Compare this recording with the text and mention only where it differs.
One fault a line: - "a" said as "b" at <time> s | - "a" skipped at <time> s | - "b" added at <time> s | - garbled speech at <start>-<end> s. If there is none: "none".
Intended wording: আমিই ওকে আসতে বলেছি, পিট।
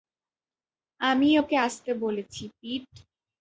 none